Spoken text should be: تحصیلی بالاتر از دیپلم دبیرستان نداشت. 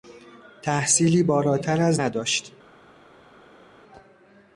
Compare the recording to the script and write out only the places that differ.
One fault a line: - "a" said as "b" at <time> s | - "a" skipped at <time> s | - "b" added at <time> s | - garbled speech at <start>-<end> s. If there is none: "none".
- "دیپلم دبیرستان" skipped at 2.0 s